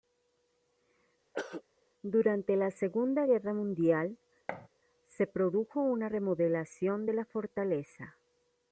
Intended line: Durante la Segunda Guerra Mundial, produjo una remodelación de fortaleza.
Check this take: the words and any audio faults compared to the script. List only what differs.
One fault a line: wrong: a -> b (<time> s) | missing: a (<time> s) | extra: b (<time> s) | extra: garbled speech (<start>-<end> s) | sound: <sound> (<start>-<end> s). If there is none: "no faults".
sound: throat clearing (1.3-1.6 s)
sound: thud (4.5-4.7 s)
extra: se (5.1 s)
extra: la (7.1 s)